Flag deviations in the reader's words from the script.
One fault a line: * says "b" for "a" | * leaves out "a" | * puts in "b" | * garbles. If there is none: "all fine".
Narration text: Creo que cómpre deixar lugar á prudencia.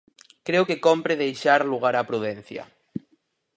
all fine